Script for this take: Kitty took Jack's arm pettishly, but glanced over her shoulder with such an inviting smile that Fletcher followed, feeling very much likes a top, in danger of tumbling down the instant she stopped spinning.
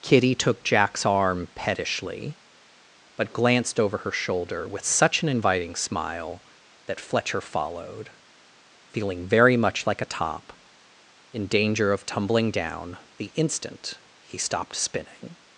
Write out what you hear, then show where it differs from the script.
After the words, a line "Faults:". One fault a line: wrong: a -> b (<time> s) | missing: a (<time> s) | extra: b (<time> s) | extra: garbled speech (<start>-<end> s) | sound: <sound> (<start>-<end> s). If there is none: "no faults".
Kitty took Jack's arm pettishly, but glanced over her shoulder with such an inviting smile that Fletcher followed, feeling very much like a top, in danger of tumbling down the instant he stopped spinning.
Faults:
wrong: likes -> like (9.8 s)
wrong: she -> he (14.2 s)